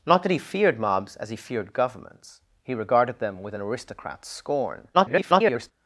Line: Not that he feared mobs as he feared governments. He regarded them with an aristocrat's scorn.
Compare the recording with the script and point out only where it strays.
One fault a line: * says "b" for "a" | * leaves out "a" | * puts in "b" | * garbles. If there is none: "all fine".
* garbles